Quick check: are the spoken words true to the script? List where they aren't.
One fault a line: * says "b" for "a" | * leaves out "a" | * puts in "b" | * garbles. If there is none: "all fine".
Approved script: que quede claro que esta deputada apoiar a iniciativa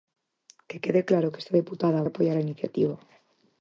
all fine